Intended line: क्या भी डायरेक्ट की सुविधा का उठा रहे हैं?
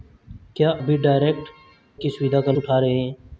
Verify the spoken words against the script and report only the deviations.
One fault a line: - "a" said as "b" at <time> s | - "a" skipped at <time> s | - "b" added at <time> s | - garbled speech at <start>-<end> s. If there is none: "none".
none